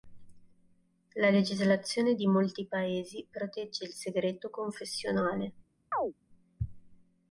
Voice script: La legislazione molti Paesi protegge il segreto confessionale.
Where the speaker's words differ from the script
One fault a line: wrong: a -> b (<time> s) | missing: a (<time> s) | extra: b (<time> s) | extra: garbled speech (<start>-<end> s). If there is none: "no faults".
extra: di (2.1 s)